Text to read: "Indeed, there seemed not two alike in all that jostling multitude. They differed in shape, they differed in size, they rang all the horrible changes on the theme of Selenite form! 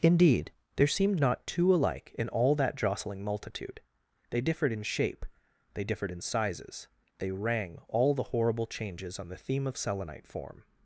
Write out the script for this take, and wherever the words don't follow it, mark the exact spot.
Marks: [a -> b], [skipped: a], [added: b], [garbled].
"Indeed, there seemed not two alike in all that jostling multitude. They differed in shape, they differed in [size, -> sizes] they rang all the horrible changes on the theme of Selenite form!